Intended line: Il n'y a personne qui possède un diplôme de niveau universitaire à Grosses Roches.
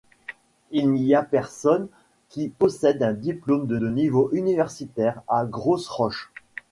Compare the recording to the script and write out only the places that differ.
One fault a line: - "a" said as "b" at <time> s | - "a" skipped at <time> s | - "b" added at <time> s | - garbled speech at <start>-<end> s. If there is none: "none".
- "de" added at 3.8 s